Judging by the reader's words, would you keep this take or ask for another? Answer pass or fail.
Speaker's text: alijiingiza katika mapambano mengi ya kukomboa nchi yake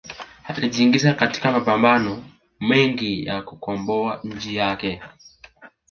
pass